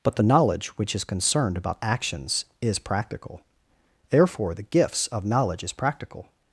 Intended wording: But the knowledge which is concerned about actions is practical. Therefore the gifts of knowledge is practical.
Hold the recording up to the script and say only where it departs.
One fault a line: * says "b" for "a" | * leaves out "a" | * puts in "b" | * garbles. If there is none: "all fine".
all fine